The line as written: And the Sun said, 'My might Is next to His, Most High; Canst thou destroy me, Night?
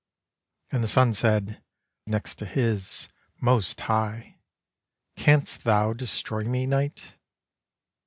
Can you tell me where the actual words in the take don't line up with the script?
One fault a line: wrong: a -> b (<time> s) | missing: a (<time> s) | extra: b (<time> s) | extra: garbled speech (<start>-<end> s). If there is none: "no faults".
missing: My might Is (1.6 s)